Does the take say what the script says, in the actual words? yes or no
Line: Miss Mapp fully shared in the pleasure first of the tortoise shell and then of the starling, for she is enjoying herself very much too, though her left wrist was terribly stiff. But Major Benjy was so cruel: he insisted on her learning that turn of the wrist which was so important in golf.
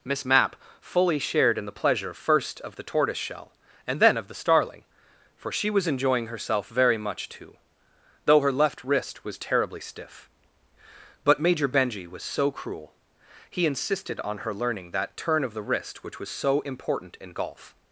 no